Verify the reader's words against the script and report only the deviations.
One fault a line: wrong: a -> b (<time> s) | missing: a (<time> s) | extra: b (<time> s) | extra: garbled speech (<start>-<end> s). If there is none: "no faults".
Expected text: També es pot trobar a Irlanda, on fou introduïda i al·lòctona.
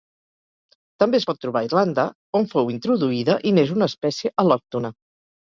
extra: n'és una espècie (3.6 s)